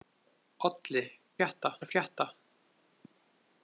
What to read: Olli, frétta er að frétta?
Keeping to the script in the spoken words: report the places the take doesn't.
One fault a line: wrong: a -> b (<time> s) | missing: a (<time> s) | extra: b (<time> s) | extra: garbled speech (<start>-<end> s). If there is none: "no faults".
no faults